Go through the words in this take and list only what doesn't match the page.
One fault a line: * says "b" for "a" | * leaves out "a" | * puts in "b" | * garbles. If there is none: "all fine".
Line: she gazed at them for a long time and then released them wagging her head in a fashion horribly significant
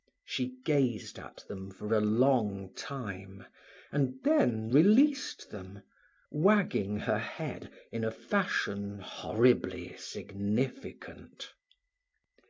all fine